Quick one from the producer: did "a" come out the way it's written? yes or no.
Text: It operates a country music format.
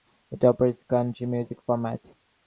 no